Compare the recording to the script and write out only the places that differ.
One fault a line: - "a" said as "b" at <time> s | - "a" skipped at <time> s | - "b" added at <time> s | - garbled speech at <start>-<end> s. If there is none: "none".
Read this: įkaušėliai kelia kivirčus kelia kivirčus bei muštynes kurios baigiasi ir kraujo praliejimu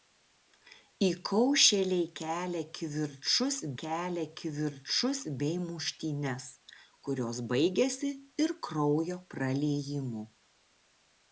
none